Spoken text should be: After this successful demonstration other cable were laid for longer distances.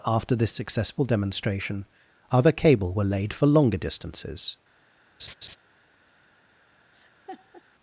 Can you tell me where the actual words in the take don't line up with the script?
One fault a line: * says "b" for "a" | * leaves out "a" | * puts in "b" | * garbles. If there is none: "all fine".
all fine